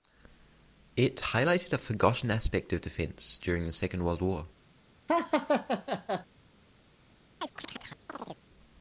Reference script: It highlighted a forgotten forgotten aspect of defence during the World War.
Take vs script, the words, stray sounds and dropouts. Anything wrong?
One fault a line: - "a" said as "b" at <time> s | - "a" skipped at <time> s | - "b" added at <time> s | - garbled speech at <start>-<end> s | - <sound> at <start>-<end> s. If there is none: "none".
- "forgotten" skipped at 2.3 s
- "Second" added at 3.7 s
- laugh at 5.1-6.3 s
- chirp at 7.4-8.4 s